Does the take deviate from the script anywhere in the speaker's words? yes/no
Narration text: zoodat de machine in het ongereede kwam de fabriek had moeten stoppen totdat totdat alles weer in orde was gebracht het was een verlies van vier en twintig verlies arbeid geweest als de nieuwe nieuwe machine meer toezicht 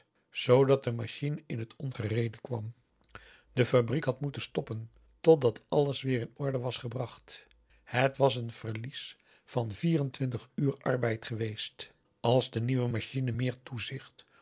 yes